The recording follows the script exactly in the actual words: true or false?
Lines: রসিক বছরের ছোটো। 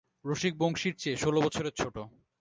false